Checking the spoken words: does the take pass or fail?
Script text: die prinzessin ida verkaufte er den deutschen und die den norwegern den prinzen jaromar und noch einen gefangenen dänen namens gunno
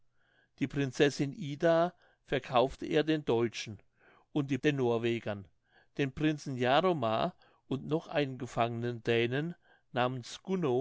pass